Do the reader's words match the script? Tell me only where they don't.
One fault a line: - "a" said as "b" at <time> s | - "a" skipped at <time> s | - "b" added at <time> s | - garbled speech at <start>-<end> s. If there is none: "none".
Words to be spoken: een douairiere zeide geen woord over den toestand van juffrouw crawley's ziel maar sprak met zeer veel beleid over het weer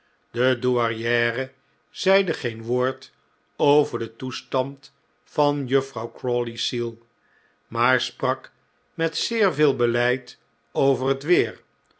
- "een" said as "de" at 0.3 s